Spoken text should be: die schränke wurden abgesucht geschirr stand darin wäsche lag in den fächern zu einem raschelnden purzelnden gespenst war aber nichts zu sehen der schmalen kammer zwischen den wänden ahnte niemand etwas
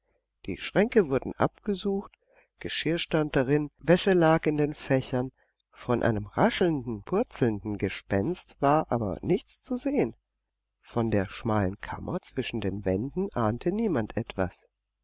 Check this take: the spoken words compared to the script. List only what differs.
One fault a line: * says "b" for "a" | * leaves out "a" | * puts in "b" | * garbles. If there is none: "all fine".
* says "von" for "zu"
* puts in "von"